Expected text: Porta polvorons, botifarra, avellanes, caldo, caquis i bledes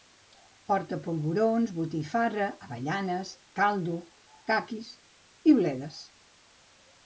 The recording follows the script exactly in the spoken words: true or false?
true